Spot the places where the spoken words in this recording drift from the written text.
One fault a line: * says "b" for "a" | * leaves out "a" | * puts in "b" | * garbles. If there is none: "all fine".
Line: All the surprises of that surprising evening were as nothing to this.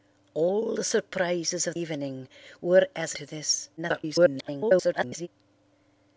* leaves out "that surprising"
* leaves out "nothing"
* garbles